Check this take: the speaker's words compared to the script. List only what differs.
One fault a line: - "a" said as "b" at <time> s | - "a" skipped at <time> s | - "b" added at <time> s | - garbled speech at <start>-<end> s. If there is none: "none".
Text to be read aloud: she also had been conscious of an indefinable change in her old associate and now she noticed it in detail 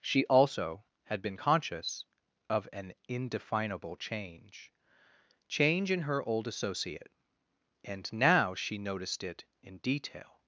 - "change" added at 5.5 s